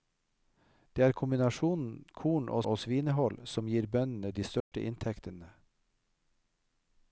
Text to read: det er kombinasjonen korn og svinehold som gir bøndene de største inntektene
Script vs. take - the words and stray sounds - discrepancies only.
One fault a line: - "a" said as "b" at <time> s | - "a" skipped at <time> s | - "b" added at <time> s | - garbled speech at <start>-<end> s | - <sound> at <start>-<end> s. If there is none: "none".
- "og" added at 2.7 s
- dropout at 4.6-4.7 s